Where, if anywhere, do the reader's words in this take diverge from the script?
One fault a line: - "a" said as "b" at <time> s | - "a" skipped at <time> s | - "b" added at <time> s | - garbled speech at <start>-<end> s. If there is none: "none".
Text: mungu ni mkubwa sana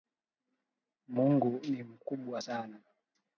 none